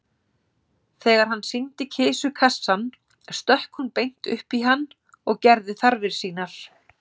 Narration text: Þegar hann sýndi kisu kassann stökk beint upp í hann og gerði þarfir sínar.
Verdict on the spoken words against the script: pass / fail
fail